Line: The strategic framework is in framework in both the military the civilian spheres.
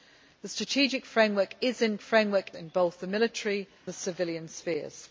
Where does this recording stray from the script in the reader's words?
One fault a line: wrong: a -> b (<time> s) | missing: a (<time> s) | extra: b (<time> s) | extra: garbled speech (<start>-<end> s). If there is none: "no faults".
no faults